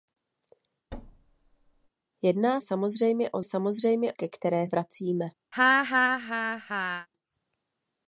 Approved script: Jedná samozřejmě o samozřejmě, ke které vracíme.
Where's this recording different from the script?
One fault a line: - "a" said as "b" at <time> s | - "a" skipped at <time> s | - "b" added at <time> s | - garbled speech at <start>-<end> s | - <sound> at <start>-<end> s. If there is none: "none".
- thud at 0.9-1.9 s
- laugh at 5.5-7.1 s